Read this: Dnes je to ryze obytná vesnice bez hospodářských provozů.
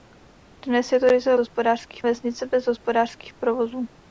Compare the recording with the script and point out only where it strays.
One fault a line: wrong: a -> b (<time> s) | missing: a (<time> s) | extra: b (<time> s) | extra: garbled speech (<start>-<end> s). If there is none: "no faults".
wrong: obytná -> hospodářských (1.4 s)